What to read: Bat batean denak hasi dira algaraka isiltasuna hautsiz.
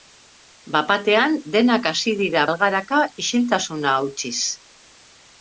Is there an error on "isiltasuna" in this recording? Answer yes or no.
no